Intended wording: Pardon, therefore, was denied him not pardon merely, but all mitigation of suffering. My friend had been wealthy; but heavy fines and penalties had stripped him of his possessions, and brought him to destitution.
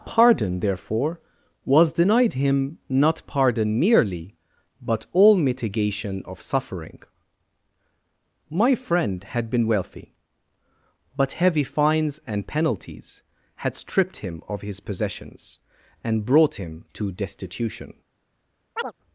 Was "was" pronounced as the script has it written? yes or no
yes